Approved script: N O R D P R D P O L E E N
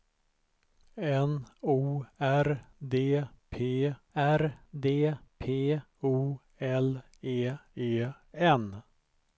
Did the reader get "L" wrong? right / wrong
right